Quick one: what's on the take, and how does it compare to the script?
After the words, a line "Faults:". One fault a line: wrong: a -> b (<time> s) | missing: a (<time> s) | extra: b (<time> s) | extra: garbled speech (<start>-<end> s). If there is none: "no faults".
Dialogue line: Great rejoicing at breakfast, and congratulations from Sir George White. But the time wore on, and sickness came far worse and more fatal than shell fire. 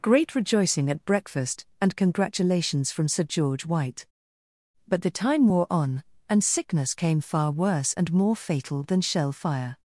Great rejoicing at breakfast, and congratulations from Sir George White. But the time wore on, and sickness came far worse and more fatal than shell fire.
Faults:
no faults